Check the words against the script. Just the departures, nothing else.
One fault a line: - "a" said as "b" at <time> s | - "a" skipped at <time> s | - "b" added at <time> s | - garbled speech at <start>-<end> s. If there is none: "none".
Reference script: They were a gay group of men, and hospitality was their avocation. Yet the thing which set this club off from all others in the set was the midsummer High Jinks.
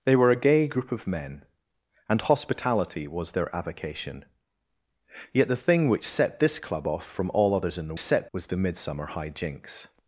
none